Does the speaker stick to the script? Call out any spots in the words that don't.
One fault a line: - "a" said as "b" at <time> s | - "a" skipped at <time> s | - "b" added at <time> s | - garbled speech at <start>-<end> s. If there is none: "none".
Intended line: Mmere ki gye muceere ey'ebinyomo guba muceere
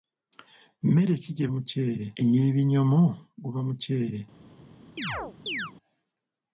none